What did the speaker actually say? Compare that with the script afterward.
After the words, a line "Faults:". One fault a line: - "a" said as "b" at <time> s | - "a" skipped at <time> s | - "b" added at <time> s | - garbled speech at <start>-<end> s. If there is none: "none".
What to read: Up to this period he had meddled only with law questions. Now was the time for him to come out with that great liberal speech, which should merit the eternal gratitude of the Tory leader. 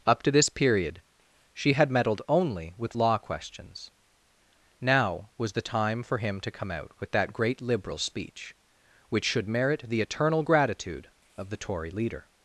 Up to this period she had meddled only with law questions. Now was the time for him to come out with that great liberal speech, which should merit the eternal gratitude of the Tory leader.
Faults:
- "he" said as "she" at 1.5 s